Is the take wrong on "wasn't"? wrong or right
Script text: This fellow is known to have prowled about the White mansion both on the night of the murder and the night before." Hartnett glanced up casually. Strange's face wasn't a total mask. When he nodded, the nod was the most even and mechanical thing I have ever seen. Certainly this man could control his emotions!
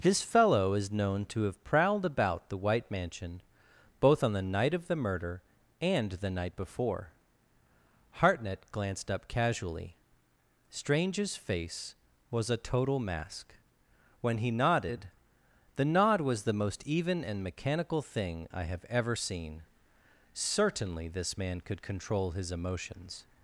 wrong